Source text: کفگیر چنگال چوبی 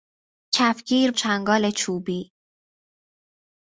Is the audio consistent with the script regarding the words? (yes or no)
yes